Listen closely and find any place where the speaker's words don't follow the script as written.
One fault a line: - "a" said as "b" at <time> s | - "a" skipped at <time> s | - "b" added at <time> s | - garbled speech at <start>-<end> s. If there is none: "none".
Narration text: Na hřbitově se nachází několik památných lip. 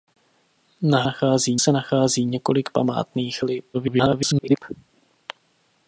- "hřbitově" said as "nachází" at 1.0 s
- garbled speech at 3.7-4.6 s